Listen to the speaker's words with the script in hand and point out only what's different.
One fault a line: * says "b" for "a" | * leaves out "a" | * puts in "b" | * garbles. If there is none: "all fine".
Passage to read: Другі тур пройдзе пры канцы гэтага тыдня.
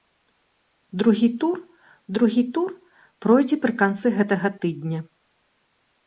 * puts in "другі тур"